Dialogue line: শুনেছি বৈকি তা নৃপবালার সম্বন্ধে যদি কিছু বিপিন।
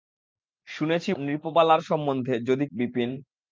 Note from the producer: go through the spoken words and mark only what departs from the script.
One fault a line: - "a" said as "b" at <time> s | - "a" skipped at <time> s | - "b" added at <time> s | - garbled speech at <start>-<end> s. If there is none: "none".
- "বৈকি তা" skipped at 1.1 s
- "কিছু" skipped at 2.7 s